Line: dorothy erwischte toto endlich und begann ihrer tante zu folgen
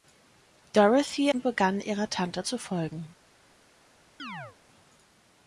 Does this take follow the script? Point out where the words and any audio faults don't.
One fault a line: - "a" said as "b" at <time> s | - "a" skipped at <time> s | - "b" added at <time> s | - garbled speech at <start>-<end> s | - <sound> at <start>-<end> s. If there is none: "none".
- "erwischte toto endlich" skipped at 1.3 s
- chirp at 4.2-4.6 s